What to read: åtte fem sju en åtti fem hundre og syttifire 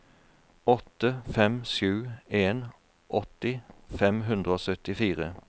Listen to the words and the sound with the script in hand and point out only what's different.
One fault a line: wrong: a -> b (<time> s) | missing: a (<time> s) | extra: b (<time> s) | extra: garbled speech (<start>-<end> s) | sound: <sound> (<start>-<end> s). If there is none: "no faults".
no faults